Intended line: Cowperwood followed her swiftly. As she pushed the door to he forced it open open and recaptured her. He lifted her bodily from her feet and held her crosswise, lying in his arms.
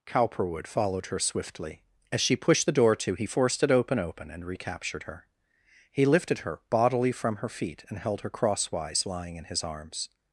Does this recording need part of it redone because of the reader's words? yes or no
no